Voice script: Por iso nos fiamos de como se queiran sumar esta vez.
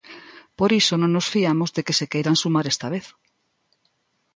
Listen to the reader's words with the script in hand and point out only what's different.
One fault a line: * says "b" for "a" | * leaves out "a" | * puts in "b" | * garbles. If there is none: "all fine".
* puts in "non"
* says "que" for "como"